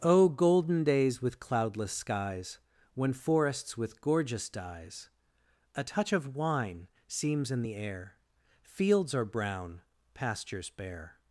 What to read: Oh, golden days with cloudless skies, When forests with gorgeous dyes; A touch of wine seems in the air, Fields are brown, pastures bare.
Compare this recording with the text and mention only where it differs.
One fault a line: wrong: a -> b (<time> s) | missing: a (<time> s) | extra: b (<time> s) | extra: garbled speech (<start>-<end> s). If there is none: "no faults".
no faults